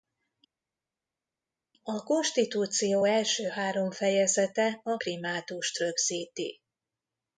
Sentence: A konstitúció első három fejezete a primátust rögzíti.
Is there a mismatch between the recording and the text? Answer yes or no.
no